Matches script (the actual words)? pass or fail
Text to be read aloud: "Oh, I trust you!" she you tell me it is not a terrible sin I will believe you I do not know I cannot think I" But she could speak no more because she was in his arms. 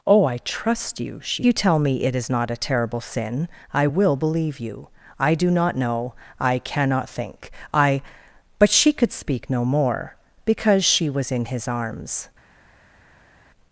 pass